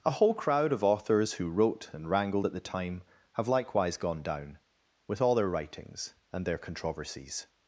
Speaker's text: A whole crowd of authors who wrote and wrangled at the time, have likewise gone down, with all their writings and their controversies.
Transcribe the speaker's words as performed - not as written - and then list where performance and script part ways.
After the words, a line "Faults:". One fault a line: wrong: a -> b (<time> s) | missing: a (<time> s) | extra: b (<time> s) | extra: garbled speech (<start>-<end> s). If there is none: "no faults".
A whole crowd of authors who wrote and wrangled at the time, have likewise gone down, with all their writings and their controversies.
Faults:
no faults